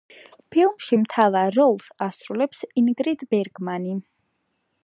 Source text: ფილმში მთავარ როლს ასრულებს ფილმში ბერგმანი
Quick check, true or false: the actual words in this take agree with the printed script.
false